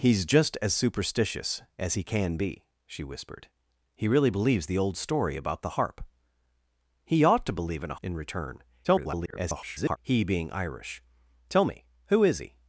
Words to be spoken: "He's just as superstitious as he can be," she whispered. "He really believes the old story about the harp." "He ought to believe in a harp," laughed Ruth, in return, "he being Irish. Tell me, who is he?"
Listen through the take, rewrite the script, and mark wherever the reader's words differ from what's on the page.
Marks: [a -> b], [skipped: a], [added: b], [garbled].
"He's just as superstitious as he can be," she whispered. "He really believes the old story about the harp." "He ought to believe in a [skipped: harp," laughed Ruth,] in return, [garbled] "he being Irish. Tell me, who is he?"